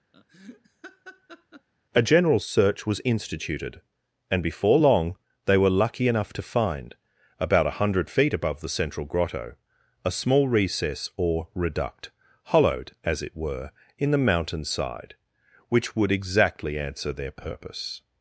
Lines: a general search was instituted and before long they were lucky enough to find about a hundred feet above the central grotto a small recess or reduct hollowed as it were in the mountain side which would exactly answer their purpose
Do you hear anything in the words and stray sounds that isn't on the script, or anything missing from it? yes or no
yes